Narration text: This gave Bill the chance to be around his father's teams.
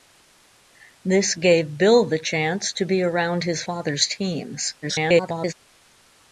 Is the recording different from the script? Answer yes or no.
yes